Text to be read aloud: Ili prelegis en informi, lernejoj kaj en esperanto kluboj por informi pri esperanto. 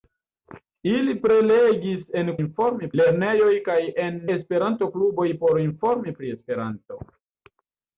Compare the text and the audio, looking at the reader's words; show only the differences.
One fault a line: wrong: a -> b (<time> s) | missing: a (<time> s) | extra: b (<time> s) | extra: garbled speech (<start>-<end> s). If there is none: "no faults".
no faults